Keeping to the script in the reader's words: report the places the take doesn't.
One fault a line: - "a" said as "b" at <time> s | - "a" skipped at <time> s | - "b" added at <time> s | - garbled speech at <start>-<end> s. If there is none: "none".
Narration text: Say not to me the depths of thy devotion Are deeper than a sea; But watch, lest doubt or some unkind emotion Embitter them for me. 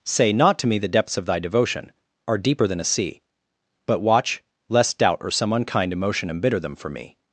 none